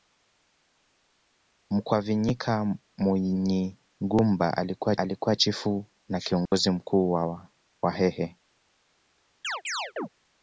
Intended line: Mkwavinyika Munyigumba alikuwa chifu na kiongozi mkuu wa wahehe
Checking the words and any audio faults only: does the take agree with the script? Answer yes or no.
no